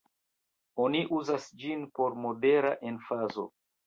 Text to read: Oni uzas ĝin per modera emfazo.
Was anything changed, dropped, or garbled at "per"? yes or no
yes